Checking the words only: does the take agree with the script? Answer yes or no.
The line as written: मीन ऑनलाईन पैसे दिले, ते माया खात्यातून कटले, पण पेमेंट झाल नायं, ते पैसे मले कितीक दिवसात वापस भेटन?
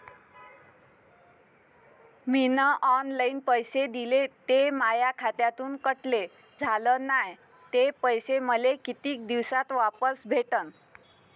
no